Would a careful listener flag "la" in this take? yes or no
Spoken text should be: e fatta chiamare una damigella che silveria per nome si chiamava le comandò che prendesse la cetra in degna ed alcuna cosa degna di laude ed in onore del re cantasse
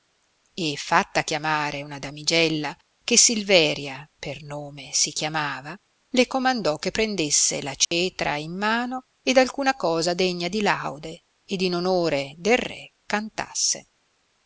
no